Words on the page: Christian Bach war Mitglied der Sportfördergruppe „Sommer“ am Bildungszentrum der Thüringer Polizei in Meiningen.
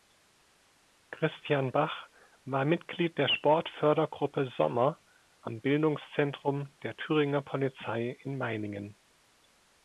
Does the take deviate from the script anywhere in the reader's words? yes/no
no